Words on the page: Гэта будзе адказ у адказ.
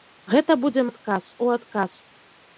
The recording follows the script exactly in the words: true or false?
true